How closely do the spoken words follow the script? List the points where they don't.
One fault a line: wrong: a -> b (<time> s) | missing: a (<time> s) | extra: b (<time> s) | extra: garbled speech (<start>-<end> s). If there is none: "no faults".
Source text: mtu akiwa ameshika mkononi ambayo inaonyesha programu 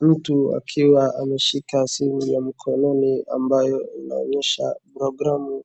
extra: simu ya (1.8 s)